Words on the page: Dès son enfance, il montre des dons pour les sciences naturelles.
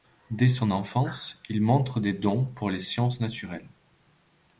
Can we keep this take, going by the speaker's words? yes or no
yes